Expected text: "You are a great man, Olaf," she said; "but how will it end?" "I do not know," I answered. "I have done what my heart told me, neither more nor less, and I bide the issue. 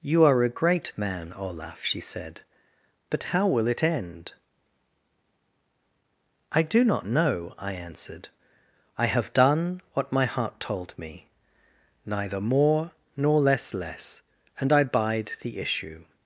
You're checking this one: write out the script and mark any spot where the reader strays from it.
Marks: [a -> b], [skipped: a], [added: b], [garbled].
"You are a great man, Olaf," she said; "but how will it end?" "I do not know," I answered. "I have done what my heart told me, neither more nor less, [added: less] and I bide the issue.